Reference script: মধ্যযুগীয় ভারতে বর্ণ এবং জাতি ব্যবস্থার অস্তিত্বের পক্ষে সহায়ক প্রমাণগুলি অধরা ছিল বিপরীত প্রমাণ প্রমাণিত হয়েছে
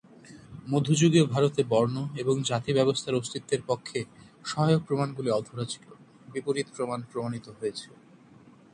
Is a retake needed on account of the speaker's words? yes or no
no